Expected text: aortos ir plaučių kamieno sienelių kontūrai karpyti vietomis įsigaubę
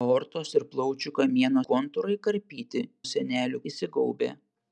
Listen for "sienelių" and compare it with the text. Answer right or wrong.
wrong